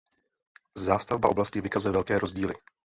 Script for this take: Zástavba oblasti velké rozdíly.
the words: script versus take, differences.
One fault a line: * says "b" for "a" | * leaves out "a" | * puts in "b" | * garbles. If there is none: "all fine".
* puts in "vykazuje"